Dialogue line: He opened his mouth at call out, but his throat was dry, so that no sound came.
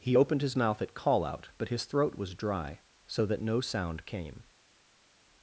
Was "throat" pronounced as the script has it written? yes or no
yes